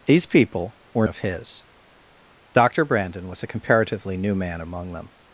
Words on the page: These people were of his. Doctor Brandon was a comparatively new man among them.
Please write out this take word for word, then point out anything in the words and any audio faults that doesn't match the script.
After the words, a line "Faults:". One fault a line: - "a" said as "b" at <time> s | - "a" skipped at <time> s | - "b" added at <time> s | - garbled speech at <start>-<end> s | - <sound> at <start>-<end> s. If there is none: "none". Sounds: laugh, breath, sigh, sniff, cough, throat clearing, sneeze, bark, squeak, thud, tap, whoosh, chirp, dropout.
These people were of his. Doctor Brandon was a comparatively new man among them.
Faults:
none